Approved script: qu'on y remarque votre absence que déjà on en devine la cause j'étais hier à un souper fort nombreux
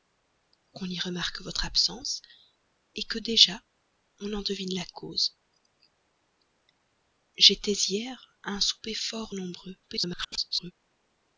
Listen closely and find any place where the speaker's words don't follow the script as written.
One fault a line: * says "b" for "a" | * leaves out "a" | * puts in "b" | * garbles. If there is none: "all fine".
* garbles